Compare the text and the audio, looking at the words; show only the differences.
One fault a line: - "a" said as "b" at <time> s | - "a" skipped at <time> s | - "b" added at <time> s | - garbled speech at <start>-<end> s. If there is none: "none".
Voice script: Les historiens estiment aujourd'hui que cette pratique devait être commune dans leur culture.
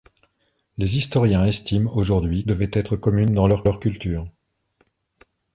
- "que cette pratique" skipped at 2.4 s
- "leur" added at 3.6 s